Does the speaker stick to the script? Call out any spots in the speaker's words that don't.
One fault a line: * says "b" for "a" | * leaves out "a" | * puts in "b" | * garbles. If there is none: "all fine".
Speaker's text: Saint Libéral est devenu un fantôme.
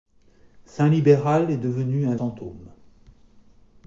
all fine